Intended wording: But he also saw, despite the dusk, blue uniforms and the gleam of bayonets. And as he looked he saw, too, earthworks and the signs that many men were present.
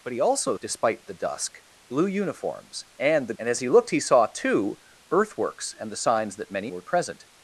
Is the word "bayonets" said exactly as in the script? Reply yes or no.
no